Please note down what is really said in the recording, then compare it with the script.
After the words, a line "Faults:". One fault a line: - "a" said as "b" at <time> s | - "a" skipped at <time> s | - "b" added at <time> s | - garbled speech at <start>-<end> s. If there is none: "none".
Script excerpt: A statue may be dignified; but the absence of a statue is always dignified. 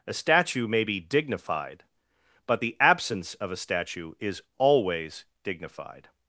A statue may be dignified; but the absence of a statue is always dignified.
Faults:
none